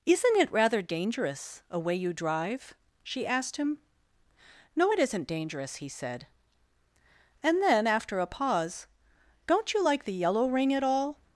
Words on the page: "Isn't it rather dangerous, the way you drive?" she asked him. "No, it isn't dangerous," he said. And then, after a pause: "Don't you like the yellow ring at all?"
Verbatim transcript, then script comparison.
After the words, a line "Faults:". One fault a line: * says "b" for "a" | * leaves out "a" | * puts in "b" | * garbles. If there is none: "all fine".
"Isn't it rather dangerous, a way you drive?" she asked him. "No, it isn't dangerous," he said. And then, after a pause: "Don't you like the yellow ring at all?"
Faults:
* says "a" for "the"